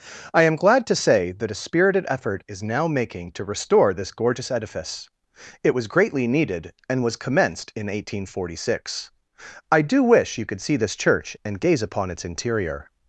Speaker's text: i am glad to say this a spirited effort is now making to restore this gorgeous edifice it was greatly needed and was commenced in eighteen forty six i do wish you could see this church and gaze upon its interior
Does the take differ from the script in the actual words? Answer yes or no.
yes